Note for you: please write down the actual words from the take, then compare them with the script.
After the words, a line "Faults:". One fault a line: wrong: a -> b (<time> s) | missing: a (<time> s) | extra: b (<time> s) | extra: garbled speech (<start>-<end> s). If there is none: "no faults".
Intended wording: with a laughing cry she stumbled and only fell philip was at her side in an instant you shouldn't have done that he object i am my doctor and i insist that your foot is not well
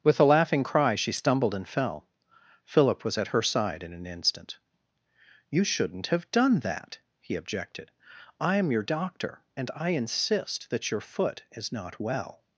with a laughing cry she stumbled and fell philip was at her side in an instant you shouldn't have done that he objected i am your doctor and i insist that your foot is not well
Faults:
missing: only (1.7 s)
wrong: object -> objected (7.3 s)
wrong: my -> your (8.7 s)